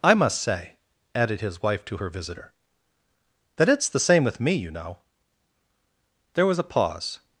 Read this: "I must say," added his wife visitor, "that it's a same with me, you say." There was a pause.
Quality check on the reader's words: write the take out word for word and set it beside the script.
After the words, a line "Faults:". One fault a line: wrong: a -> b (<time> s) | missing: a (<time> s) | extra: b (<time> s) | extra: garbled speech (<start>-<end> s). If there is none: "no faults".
"I must say," added his wife to her visitor, "that it's the same with me, you know." There was a pause.
Faults:
extra: to her (1.9 s)
wrong: a -> the (3.9 s)
wrong: say -> know (4.7 s)